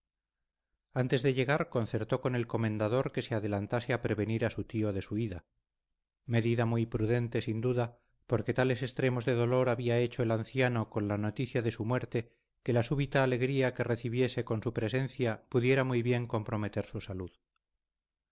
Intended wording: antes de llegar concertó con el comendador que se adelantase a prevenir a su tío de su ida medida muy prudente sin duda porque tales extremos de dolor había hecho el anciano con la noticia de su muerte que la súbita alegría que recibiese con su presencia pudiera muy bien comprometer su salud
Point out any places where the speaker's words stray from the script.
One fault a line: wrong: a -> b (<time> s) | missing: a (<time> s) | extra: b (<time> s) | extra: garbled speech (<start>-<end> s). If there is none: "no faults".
no faults